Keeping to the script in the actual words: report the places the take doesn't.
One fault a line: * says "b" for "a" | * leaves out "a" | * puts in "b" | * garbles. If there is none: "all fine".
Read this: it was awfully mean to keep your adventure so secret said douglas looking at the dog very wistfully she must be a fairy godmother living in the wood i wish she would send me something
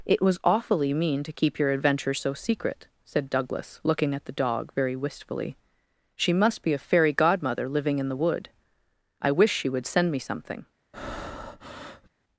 all fine